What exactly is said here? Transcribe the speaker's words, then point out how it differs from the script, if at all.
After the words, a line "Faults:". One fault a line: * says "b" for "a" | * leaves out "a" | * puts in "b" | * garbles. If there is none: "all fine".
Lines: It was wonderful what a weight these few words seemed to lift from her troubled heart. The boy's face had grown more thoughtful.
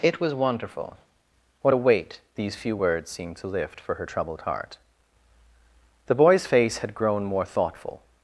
It was wonderful what a weight these few words seemed to lift for her troubled heart. The boy's face had grown more thoughtful.
Faults:
* says "for" for "from"